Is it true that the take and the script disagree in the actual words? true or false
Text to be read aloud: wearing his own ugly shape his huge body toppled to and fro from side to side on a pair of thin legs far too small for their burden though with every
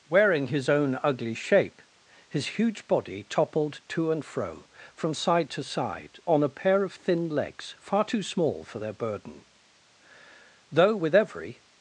false